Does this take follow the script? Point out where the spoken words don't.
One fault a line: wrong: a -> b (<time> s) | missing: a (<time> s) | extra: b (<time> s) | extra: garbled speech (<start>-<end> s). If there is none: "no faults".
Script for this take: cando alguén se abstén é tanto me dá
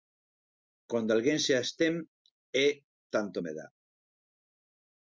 no faults